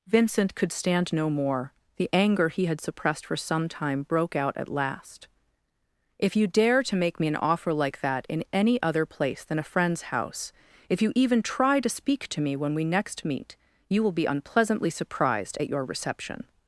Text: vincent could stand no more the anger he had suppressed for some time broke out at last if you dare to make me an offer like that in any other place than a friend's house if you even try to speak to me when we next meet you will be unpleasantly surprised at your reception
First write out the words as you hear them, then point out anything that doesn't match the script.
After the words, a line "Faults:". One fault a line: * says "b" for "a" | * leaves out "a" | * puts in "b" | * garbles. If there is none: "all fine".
vincent could stand no more the anger he had suppressed for some time broke out at last if you dare to make me an offer like that in any other place than a friend's house if you even try to speak to me when we next meet you will be unpleasantly surprised at your reception
Faults:
all fine